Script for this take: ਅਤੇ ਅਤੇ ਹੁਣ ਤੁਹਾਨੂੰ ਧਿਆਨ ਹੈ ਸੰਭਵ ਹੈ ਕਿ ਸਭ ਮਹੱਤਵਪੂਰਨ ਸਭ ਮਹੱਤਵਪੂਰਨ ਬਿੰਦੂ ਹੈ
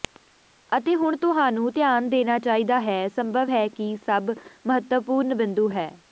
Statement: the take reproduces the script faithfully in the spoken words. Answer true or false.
false